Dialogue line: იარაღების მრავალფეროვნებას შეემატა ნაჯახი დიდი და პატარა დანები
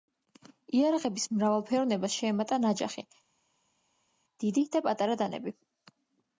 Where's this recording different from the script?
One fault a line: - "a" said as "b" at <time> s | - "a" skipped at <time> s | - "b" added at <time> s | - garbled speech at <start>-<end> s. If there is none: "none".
none